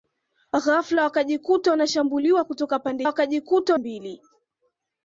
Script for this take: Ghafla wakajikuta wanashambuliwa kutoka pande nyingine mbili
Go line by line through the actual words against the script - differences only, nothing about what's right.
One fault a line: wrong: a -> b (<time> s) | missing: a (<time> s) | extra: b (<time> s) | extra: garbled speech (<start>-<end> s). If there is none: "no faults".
wrong: nyingine -> wakajikuta (3.1 s)